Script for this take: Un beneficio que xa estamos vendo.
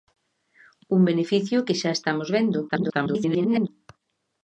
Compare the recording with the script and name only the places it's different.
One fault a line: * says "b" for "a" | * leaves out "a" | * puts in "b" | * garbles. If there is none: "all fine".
* garbles